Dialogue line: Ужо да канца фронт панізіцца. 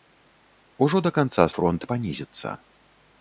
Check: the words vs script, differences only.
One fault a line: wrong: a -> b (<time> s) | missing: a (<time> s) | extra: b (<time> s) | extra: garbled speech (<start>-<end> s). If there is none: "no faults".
no faults